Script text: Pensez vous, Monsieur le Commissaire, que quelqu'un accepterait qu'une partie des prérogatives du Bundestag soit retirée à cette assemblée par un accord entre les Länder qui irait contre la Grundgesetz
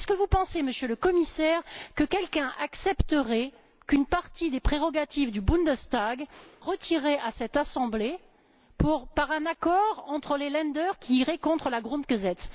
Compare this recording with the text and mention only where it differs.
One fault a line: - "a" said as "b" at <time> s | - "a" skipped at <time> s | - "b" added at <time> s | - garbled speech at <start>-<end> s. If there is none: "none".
- "soit" skipped at 6.2 s